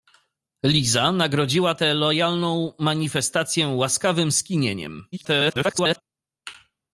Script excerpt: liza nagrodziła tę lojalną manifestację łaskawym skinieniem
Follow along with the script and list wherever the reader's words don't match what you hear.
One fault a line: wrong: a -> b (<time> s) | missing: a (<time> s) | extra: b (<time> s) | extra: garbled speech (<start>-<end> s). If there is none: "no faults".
extra: garbled speech (5.1-6.0 s)